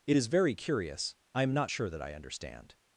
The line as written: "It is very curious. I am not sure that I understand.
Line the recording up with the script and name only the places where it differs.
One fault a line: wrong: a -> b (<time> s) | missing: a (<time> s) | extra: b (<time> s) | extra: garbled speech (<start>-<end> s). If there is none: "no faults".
no faults